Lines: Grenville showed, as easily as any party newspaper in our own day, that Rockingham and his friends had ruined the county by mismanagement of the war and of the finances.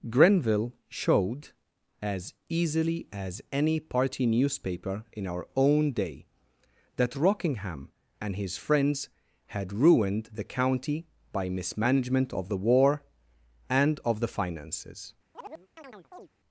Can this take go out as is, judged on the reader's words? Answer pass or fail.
pass